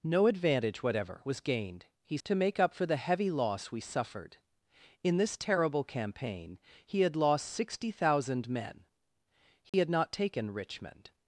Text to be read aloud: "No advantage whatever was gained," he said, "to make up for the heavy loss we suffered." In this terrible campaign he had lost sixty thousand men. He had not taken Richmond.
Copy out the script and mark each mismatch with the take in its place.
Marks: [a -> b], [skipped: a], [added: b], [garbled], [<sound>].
"No advantage whatever was gained," he [skipped: said,] "to make up for the heavy loss we suffered." In this terrible campaign he had lost sixty thousand men. He [dropout] had not taken Richmond.